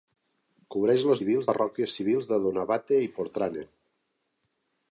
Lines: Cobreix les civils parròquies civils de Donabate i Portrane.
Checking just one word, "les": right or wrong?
right